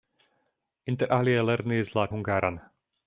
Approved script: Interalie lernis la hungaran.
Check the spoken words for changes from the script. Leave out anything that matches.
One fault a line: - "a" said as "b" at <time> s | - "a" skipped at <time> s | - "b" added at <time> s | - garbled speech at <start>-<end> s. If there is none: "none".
none